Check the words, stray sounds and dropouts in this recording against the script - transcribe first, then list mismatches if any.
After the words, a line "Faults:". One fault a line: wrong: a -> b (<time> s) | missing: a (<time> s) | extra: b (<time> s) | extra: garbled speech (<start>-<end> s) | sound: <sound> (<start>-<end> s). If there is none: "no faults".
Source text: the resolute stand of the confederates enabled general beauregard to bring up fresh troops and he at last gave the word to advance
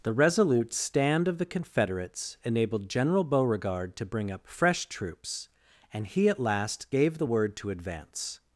the resolute stand of the confederates enabled general beauregard to bring up fresh troops and he at last gave the word to advance
Faults:
no faults